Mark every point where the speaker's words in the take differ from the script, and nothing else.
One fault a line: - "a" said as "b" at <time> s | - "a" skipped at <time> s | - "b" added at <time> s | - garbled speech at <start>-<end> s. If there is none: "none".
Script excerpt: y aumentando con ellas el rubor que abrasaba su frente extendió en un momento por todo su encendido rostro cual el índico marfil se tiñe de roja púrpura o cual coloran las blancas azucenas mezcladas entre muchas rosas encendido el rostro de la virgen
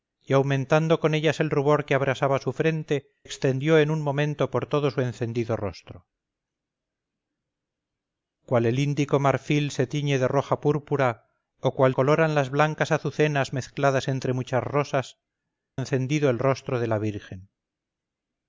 none